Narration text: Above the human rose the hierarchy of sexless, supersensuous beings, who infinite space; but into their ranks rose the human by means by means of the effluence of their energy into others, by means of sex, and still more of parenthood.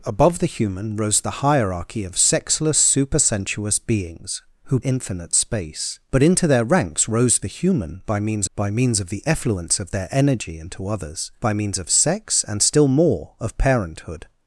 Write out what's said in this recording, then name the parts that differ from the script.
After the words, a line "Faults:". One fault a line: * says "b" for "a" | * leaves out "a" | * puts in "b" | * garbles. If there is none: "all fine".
Above the human rose the hierarchy of sexless, supersensuous beings, who infinite space; but into their ranks rose the human by means by means of the effluence of their energy into others, by means of sex, and still more of parenthood.
Faults:
all fine